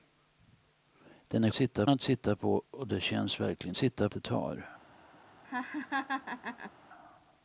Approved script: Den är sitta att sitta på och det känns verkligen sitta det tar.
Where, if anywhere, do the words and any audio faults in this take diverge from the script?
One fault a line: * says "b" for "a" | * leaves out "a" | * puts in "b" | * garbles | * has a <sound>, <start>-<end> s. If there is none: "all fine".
* has a laugh, 5.4-6.7 s